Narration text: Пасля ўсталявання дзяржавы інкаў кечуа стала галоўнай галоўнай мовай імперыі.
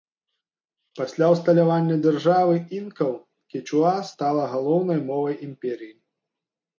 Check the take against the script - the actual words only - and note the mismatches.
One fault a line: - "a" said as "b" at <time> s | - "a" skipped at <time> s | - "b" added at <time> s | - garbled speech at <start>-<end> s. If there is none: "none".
- "галоўнай" skipped at 5.0 s